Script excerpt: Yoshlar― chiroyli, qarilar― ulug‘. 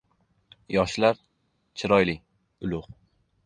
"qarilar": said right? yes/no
no